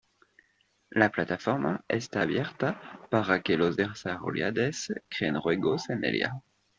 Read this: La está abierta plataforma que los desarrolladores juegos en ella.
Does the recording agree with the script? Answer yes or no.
no